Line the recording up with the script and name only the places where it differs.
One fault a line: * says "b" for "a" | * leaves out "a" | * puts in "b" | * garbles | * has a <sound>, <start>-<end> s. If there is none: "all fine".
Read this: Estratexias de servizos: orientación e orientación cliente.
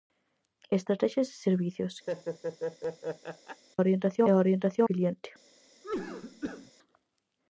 * has a laugh, 2.1-3.6 s
* has a cough, 5.8-6.7 s